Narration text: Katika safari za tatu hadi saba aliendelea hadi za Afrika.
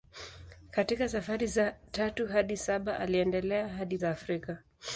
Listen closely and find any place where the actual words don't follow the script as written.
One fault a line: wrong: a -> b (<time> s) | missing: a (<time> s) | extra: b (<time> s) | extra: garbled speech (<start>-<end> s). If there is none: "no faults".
no faults